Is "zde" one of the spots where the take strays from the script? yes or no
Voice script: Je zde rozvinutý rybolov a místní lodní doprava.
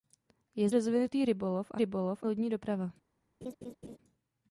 yes